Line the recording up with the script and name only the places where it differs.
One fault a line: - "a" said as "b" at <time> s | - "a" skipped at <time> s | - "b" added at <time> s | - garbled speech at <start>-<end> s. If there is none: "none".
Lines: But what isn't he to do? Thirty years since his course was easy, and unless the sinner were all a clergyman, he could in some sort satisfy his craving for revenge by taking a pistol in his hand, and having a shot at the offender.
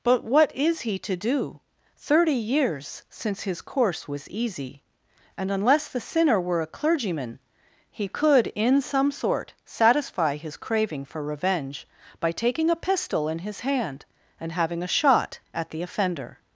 - "isn't" said as "is" at 0.6 s
- "all" skipped at 6.6 s